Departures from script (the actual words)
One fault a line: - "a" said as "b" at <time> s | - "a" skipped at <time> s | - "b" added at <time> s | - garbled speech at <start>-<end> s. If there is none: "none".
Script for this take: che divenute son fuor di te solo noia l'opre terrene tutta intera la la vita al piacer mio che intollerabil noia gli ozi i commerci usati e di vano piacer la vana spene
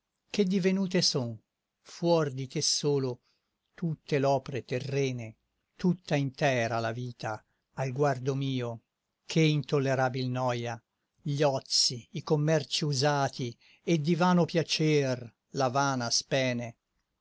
- "noia" said as "tutte" at 3.8 s
- "la" skipped at 6.9 s
- "piacer" said as "guardo" at 7.9 s